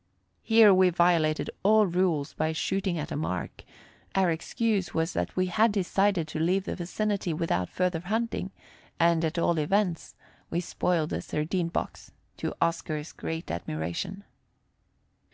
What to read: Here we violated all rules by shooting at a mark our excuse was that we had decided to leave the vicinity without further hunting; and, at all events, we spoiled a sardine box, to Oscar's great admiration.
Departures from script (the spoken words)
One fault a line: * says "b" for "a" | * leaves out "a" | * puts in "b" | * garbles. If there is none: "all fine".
all fine